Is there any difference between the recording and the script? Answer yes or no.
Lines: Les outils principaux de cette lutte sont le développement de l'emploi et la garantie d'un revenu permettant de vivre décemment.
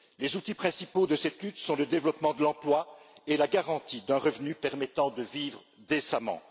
no